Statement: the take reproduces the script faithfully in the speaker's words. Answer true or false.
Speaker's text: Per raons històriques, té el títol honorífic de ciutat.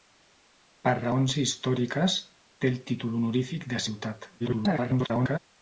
false